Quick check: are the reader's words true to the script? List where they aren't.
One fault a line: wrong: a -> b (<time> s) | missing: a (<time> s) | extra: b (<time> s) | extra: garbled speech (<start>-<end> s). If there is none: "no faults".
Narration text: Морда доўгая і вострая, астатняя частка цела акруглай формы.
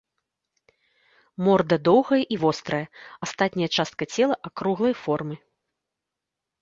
no faults